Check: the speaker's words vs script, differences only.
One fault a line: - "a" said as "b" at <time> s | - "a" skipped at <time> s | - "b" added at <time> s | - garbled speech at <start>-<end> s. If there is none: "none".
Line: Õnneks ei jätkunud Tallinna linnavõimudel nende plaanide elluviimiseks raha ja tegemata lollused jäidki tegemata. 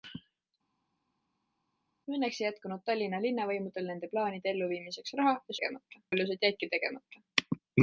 none